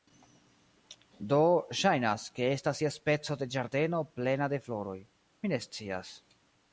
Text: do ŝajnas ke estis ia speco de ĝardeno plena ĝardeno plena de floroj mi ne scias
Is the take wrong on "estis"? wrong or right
wrong